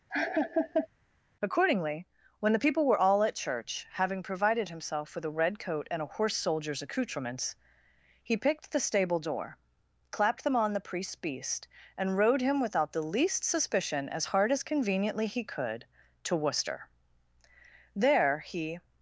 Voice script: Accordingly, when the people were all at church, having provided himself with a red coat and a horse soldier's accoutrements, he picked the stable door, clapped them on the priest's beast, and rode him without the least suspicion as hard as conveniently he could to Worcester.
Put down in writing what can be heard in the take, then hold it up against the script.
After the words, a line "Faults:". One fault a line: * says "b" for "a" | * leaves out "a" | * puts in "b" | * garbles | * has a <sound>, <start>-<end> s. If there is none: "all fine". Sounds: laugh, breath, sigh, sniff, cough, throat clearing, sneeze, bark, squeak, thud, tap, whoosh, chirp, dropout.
Accordingly, when the people were all at church, having provided himself with a red coat and a horse soldier's accoutrements, he picked the stable door, clapped them on the priest's beast, and rode him without the least suspicion as hard as conveniently he could to Worcester. There he
Faults:
* has a laugh, 0.1-0.9 s
* puts in "There he"